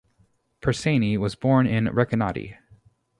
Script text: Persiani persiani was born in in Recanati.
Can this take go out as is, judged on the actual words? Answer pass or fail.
fail